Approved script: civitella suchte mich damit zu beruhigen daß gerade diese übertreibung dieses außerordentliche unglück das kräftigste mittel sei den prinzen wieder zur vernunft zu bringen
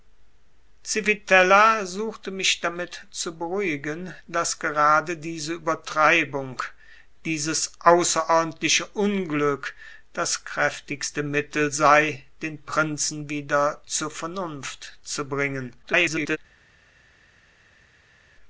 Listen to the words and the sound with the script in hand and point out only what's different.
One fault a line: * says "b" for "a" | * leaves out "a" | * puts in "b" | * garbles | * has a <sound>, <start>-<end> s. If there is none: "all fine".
* garbles